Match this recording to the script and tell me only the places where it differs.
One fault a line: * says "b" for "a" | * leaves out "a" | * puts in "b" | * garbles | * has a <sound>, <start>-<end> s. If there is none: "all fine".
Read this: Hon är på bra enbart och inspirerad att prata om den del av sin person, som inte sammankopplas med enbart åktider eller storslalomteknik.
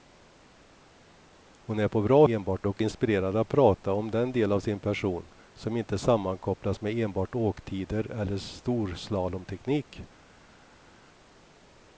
all fine